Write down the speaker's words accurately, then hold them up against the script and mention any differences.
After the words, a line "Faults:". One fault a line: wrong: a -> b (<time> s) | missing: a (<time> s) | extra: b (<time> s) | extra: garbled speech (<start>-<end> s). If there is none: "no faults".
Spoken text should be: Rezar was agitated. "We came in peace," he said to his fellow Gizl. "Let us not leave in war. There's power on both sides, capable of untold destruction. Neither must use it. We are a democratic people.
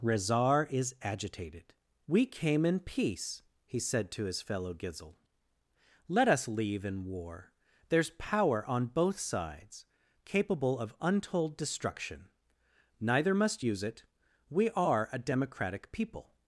Rezar is agitated. "We came in peace," he said to his fellow Gizl. "Let us leave in war. There's power on both sides, capable of untold destruction. Neither must use it. We are a democratic people.
Faults:
wrong: was -> is (0.7 s)
missing: not (6.5 s)